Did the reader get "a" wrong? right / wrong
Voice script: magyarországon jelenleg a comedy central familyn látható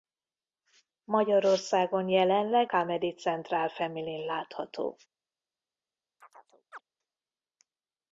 wrong